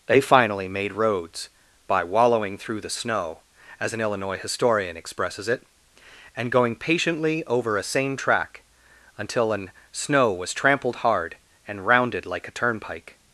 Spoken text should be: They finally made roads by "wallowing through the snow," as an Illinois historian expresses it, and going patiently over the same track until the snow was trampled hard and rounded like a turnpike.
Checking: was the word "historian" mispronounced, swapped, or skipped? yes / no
no